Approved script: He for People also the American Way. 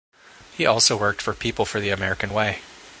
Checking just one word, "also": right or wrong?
wrong